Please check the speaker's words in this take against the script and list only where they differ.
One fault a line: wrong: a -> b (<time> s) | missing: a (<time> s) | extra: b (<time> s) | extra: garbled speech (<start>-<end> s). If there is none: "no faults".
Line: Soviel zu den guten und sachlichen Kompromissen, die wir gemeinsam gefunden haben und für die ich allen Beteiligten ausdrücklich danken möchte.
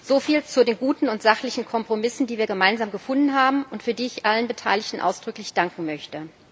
no faults